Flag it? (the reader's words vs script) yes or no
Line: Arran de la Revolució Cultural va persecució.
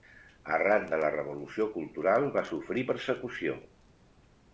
yes